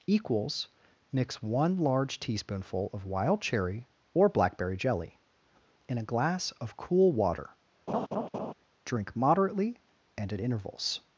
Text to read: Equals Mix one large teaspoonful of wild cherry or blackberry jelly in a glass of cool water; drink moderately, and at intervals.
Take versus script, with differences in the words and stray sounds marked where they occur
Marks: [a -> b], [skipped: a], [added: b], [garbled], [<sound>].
Equals Mix one large teaspoonful of wild cherry or blackberry jelly in a glass of cool water; [laugh] drink moderately, and at intervals.